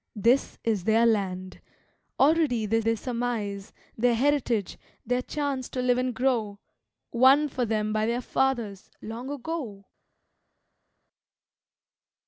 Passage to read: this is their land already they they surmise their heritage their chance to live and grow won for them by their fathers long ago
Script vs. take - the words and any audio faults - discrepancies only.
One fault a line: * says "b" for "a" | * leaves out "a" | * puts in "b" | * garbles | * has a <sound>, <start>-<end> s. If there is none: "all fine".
all fine